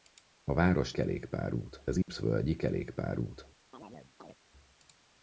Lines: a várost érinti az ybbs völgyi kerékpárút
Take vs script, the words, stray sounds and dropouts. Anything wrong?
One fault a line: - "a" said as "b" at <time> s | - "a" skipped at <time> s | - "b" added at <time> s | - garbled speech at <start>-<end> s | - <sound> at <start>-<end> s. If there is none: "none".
- "érinti" said as "kerékpárút" at 0.9 s
- dropout at 2.0-2.1 s
- chirp at 3.7-4.4 s